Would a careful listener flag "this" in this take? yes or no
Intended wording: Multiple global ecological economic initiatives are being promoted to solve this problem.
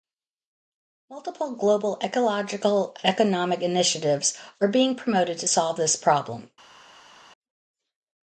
no